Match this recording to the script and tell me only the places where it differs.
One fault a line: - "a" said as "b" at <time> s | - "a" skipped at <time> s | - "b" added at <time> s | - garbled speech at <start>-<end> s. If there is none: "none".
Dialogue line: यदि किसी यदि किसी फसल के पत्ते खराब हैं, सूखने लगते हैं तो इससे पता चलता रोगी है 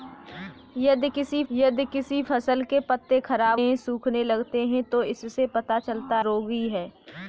none